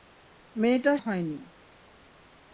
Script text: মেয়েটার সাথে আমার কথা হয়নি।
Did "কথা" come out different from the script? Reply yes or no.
yes